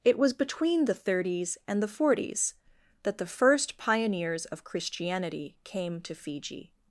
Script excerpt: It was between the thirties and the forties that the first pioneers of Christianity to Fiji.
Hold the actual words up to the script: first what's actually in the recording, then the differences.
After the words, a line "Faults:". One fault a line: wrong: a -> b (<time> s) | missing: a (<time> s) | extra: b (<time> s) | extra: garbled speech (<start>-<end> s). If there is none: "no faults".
It was between the thirties and the forties that the first pioneers of Christianity came to Fiji.
Faults:
extra: came (5.6 s)